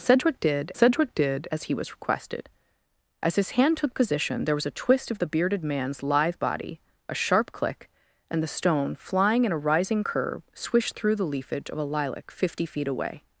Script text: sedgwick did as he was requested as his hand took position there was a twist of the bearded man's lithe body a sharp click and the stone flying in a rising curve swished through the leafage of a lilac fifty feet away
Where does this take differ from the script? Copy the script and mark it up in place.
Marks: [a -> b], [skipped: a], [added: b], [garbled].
sedgwick did [added: sedgwick did] as he was requested as his hand took position there was a twist of the bearded man's lithe body a sharp click and the stone flying in a rising curve swished through the leafage of a lilac fifty feet away